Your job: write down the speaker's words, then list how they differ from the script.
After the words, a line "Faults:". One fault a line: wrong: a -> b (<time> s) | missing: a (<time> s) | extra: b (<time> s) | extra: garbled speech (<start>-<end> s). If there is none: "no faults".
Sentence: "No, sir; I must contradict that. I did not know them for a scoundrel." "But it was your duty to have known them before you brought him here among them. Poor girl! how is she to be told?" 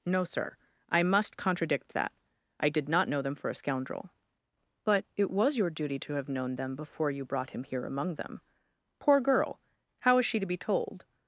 "No, sir; I must contradict that. I did not know them for a scoundrel." "But it was your duty to have known them before you brought him here among them. Poor girl! how is she to be told?"
Faults:
no faults